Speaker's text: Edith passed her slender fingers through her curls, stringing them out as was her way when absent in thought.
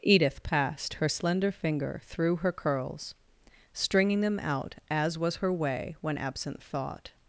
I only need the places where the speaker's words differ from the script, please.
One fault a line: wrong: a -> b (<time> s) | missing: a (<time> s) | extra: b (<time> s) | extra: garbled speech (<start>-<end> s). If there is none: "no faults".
wrong: fingers -> finger (1.5 s)
missing: in (6.6 s)